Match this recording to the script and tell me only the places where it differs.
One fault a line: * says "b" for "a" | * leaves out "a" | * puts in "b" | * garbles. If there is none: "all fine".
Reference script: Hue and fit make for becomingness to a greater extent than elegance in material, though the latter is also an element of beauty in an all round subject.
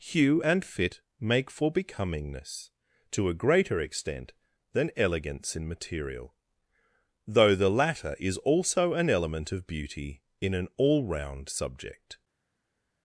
all fine